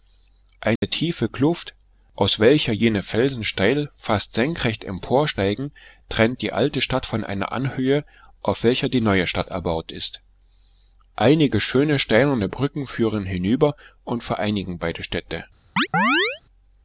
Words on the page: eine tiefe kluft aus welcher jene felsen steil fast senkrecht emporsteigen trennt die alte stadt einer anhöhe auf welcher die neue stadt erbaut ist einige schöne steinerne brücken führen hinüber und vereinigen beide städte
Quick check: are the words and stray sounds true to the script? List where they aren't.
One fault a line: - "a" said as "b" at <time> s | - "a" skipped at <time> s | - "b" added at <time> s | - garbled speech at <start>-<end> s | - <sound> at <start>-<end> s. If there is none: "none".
- dropout at 0.8-0.8 s
- "von" added at 7.1 s
- chirp at 15.8-16.4 s